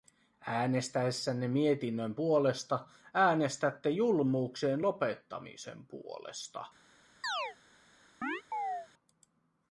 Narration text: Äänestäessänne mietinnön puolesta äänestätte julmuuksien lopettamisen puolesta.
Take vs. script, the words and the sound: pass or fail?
fail